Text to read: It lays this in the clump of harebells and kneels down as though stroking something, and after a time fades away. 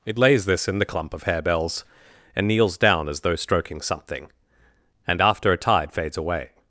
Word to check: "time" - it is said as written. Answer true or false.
false